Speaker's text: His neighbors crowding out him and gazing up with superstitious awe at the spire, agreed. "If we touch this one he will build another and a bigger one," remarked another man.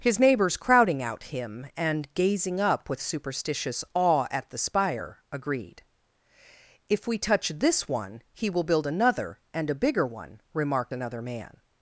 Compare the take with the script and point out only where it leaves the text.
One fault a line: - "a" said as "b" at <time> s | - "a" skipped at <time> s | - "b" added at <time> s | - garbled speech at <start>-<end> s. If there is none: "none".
none